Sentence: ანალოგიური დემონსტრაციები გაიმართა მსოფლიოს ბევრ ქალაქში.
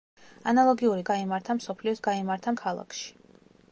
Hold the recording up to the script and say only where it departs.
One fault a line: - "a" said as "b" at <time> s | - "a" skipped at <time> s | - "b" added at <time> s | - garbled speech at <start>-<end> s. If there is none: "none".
- "დემონსტრაციები" skipped at 1.0 s
- "ბევრ" said as "გაიმართა" at 2.1 s